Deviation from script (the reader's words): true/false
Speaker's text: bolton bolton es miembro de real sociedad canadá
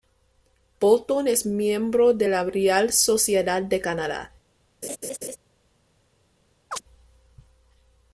true